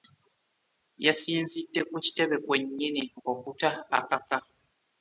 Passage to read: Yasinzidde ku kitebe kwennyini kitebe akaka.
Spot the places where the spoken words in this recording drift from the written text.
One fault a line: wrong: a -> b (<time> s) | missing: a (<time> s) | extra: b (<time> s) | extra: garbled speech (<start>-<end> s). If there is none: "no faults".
wrong: kitebe -> okuta (3.3 s)